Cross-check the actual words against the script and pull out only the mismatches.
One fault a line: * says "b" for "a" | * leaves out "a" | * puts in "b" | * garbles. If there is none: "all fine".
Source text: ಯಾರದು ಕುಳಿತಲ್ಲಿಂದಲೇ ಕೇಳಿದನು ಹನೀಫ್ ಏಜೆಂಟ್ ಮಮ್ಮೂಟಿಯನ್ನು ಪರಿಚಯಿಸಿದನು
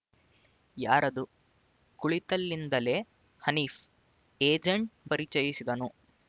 * leaves out "ಕೇಳಿದನು"
* leaves out "ಮಮ್ಮೂಟಿಯನ್ನು"